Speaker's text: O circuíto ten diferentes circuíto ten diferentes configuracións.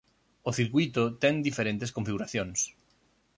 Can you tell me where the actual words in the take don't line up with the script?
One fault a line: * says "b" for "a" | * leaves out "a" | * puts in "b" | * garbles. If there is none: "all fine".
* leaves out "circuíto ten diferentes"